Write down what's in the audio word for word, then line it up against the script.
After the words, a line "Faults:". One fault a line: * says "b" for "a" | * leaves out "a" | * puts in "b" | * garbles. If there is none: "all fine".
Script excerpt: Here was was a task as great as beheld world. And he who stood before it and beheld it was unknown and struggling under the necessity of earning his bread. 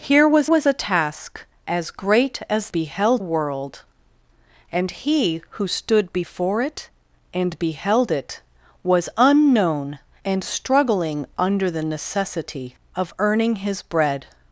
Here was was a task as great as beheld world. And he who stood before it and beheld it was unknown and struggling under the necessity of earning his bread.
Faults:
all fine